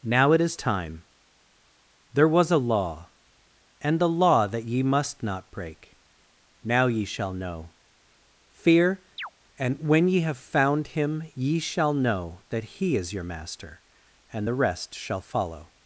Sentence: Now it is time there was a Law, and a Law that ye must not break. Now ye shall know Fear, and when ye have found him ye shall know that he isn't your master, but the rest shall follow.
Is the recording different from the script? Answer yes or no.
yes